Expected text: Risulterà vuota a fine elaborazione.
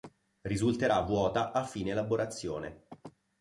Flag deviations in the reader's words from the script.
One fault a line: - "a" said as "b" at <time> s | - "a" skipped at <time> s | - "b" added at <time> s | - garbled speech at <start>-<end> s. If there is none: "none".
none